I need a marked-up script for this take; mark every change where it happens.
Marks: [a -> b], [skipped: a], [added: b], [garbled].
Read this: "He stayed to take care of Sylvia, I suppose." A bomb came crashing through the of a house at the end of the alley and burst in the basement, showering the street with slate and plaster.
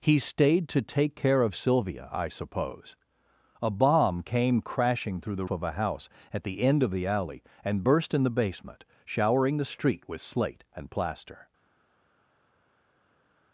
"He stayed to take care of Sylvia, I suppose." A bomb came crashing through the of a house at the end of the alley and burst in the basement, showering the street with slate and plaster.